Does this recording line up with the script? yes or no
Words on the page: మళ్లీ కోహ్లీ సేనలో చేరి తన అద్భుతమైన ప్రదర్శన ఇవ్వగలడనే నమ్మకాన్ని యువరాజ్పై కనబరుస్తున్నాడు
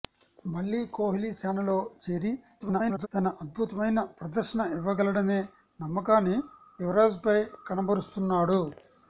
no